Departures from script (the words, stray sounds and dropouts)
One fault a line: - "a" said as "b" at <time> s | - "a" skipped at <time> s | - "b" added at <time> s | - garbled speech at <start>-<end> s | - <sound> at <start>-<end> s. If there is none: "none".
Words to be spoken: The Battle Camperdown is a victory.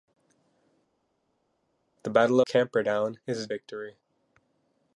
none